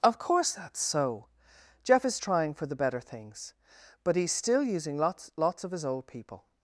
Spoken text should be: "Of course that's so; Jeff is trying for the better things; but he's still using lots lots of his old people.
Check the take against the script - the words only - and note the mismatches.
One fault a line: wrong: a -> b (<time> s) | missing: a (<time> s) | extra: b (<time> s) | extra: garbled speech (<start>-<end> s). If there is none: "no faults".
no faults